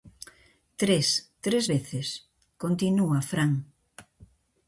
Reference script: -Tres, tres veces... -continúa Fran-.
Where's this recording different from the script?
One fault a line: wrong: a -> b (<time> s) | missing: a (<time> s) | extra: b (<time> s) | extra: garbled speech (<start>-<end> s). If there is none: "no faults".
no faults